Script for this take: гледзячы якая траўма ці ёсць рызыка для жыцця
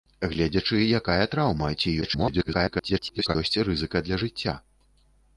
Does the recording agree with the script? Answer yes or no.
no